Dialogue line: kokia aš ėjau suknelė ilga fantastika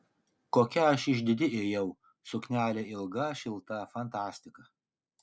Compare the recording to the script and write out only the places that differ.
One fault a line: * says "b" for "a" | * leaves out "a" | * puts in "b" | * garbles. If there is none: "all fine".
* puts in "išdidi"
* puts in "šilta"